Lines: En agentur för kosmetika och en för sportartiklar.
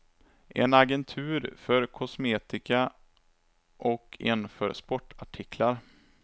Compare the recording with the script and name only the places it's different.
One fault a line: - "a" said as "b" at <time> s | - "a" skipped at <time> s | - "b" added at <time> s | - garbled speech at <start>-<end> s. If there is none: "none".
none